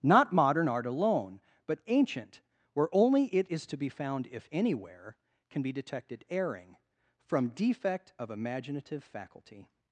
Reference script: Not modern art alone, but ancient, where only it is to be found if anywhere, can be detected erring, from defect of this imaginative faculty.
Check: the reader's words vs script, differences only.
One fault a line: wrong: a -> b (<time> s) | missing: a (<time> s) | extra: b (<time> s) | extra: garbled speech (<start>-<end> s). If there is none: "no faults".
missing: this (8.3 s)